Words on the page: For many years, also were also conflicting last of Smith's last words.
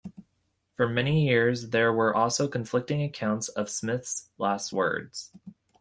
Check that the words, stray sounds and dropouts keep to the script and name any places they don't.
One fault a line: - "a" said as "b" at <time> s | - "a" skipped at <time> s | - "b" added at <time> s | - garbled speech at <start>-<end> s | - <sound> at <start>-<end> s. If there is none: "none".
- "also" said as "there" at 1.7 s
- "last" said as "accounts" at 3.0 s